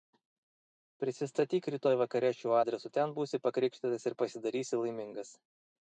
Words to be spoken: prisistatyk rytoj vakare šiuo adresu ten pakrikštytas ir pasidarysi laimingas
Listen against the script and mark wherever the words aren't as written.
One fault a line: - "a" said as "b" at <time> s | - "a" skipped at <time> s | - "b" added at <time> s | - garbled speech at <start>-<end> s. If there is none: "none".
- "būsi" added at 3.2 s